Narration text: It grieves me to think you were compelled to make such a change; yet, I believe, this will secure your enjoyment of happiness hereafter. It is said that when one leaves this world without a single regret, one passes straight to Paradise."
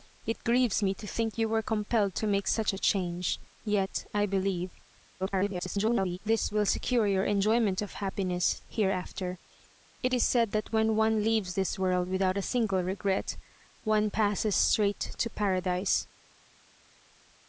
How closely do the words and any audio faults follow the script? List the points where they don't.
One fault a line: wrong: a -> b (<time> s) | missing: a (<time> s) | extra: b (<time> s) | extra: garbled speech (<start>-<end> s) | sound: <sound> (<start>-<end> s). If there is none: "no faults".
extra: garbled speech (5.2-6.2 s)